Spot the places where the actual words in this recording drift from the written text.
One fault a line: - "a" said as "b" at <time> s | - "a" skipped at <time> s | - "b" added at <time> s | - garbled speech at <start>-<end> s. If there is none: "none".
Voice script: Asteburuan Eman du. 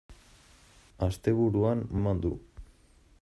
none